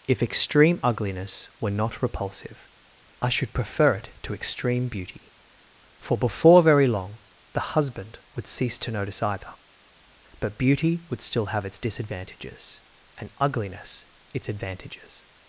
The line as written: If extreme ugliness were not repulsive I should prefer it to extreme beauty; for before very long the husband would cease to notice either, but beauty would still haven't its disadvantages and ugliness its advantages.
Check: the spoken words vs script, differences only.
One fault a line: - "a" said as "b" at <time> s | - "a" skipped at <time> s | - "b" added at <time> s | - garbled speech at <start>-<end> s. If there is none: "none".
- "haven't" said as "have" at 11.5 s